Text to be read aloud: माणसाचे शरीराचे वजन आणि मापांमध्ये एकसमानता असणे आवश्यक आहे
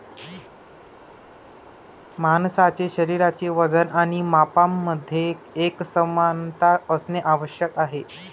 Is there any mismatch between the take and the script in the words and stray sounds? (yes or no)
no